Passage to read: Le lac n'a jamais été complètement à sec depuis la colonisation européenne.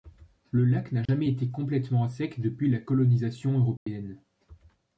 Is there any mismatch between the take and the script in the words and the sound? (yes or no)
yes